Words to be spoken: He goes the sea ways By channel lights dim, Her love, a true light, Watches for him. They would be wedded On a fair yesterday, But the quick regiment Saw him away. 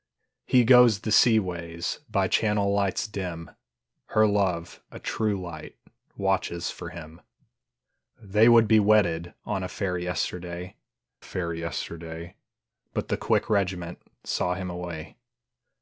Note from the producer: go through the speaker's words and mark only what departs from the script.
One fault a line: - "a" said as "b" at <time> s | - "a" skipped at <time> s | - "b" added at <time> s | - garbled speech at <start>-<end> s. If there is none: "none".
- "fair yesterday" added at 11.2 s